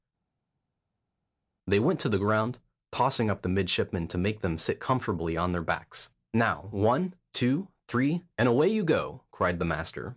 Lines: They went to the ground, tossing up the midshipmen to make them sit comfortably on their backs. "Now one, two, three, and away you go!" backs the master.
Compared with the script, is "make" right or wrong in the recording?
right